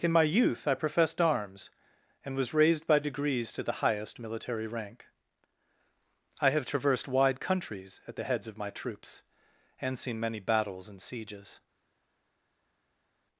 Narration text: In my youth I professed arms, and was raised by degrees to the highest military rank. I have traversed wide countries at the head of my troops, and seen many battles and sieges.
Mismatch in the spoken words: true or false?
true